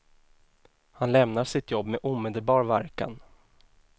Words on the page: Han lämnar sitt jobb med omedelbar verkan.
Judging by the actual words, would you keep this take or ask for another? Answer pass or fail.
pass